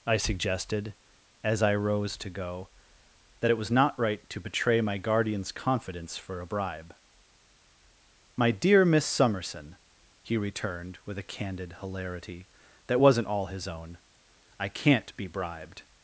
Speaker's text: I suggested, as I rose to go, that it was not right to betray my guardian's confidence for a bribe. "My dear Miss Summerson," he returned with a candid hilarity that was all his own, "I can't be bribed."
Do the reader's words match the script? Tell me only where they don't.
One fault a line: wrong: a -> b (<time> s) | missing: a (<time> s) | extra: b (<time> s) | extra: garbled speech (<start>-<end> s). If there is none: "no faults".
wrong: was -> wasn't (13.0 s)